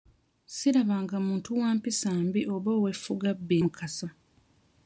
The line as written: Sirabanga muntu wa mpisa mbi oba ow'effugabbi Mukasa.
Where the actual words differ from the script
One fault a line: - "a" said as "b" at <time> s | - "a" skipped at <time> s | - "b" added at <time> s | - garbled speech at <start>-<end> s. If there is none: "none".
none